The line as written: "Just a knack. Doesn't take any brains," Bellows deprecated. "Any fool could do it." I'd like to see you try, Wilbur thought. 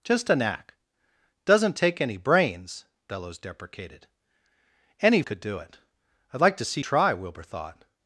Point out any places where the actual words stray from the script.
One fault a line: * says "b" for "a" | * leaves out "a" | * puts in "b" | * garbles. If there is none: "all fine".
* leaves out "fool"
* leaves out "you"